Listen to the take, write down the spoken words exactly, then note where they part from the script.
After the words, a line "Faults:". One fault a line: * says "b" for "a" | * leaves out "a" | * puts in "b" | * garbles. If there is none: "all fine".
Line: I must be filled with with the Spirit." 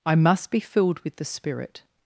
I must be filled with the Spirit."
Faults:
* leaves out "with"